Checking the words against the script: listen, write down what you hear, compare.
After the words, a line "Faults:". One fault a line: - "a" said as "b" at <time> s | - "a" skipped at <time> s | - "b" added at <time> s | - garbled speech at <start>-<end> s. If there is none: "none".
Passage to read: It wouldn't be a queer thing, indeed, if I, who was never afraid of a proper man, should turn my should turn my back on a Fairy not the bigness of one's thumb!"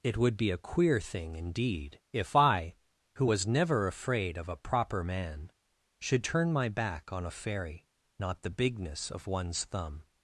It would be a queer thing, indeed, if I, who was never afraid of a proper man, should turn my back on a Fairy not the bigness of one's thumb!"
Faults:
- "wouldn't" said as "would" at 0.2 s
- "should turn my" skipped at 6.7 s